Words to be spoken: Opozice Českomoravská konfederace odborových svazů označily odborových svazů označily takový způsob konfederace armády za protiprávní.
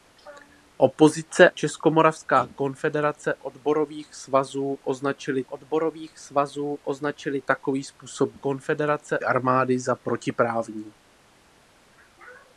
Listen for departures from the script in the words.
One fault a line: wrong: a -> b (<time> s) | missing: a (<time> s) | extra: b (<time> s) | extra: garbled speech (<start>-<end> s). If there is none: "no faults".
no faults